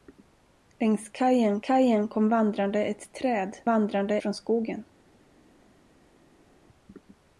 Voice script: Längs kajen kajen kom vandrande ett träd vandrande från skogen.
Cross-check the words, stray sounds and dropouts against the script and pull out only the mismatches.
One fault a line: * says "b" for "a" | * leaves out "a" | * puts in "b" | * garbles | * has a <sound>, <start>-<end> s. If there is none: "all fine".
all fine